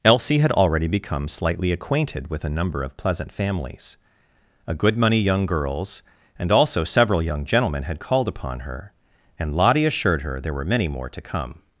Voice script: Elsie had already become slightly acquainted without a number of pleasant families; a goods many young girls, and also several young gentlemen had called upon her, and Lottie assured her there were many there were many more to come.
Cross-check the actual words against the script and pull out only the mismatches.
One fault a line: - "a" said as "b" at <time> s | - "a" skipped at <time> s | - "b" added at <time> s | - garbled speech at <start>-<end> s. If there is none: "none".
- "without" said as "with" at 2.3 s
- "goods" said as "good" at 4.7 s
- "there were many" skipped at 10.9 s